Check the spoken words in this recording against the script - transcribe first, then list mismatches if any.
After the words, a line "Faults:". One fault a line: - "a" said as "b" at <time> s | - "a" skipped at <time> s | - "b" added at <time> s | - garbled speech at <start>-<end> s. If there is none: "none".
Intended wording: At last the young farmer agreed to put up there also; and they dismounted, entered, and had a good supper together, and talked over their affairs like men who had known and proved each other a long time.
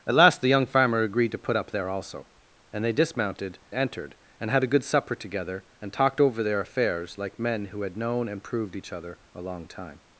At last the young farmer agreed to put up there also; and they dismounted, entered, and had a good supper together, and talked over their affairs like men who had known and proved each other a long time.
Faults:
none